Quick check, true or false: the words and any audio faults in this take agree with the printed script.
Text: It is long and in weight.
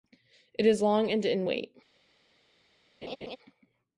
false